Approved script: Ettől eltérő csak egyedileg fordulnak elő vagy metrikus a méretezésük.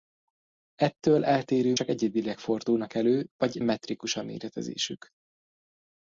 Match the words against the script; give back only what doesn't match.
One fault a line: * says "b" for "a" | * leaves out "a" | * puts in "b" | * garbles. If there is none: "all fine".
all fine